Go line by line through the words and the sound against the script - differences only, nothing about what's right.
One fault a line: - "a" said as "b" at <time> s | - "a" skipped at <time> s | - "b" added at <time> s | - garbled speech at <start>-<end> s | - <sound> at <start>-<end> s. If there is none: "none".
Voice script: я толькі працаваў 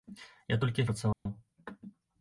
- dropout at 1.1-1.3 s